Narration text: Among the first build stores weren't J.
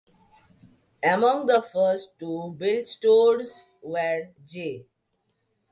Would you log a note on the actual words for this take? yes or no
yes